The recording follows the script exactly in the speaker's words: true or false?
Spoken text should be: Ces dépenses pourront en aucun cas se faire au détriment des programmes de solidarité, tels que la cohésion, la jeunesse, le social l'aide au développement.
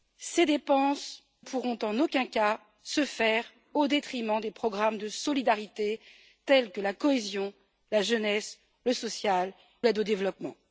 true